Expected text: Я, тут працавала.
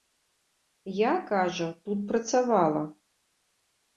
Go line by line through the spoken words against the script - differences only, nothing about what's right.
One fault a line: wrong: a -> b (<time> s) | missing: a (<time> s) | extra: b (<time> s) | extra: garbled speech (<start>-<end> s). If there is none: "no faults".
extra: кажа (1.3 s)